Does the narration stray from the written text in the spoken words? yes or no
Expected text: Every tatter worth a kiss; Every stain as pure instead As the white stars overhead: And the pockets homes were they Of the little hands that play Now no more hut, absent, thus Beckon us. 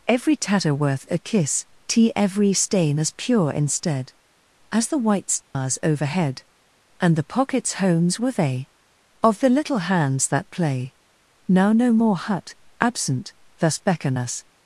yes